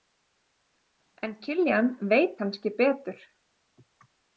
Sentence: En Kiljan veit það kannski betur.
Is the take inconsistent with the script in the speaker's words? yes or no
yes